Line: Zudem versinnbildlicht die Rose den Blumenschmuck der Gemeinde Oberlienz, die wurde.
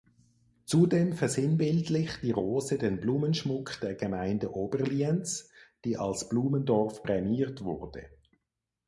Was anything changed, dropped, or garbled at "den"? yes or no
no